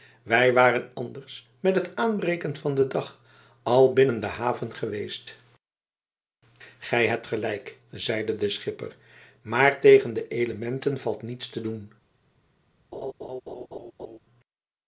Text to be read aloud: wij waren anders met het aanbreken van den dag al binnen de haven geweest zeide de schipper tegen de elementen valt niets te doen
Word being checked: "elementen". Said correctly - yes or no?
yes